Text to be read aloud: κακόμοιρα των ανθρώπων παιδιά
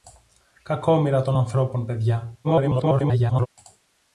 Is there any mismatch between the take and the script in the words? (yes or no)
yes